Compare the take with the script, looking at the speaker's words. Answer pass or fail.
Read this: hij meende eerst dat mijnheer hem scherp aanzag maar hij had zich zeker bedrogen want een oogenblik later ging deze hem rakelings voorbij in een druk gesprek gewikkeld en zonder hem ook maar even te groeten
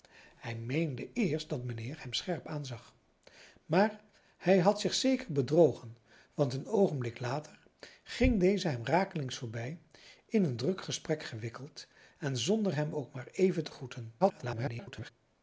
fail